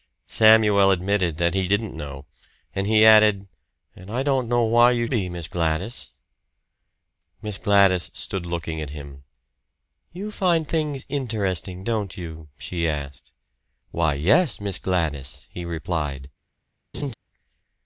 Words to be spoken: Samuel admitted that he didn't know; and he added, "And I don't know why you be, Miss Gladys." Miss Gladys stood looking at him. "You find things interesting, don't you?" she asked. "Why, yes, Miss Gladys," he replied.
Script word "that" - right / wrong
right